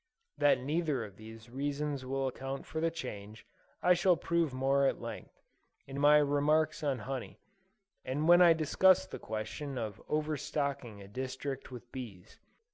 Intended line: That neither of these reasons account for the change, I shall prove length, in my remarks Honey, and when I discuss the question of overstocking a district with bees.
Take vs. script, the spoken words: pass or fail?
fail